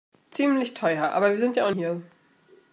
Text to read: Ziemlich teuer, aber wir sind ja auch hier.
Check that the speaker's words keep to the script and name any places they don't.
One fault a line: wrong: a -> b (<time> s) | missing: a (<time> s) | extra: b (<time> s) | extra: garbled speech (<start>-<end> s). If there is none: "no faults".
no faults